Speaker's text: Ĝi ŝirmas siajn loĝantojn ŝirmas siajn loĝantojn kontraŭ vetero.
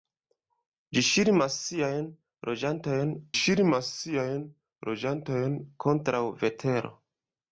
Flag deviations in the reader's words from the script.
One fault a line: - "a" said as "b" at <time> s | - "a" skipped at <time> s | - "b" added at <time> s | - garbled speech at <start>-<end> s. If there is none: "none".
none